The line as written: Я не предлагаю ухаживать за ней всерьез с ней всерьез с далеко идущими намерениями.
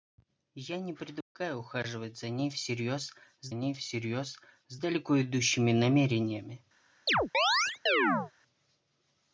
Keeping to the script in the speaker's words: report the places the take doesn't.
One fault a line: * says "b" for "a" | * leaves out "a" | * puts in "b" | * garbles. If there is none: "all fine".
all fine